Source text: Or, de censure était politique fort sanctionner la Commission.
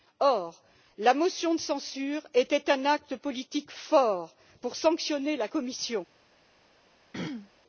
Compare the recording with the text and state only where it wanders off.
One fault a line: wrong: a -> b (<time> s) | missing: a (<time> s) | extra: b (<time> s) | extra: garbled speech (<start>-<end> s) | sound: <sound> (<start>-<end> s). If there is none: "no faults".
extra: la motion (1.0 s)
extra: un acte (2.7 s)
extra: pour (4.6 s)
sound: throat clearing (7.1-7.5 s)